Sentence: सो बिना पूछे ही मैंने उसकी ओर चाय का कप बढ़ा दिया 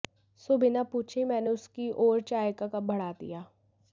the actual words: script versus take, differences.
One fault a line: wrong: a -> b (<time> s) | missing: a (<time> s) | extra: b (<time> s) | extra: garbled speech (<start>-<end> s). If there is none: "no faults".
no faults